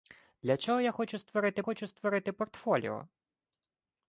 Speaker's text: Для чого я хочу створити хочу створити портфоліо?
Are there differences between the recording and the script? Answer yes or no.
no